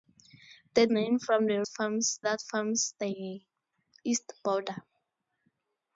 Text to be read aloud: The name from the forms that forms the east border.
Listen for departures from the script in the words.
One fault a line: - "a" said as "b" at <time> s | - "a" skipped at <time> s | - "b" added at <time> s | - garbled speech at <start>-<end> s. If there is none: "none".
none